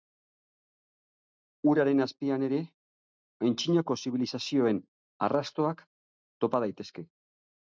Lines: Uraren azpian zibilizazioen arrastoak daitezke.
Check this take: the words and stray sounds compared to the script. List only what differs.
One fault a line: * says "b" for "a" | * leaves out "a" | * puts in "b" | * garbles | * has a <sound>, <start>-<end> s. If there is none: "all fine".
* puts in "ere antzinako"
* puts in "topa"